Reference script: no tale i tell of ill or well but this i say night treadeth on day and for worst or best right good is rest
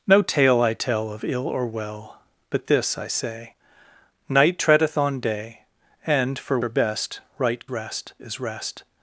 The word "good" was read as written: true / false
false